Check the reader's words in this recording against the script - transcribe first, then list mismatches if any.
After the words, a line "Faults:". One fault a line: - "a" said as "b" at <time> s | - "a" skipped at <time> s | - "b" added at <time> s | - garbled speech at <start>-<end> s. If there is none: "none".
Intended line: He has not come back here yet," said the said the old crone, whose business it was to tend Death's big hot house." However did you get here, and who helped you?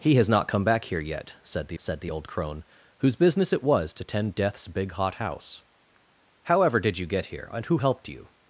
He has not come back here yet," said the said the old crone, whose business it was to tend Death's big hot house." However did you get here, and who helped you?
Faults:
none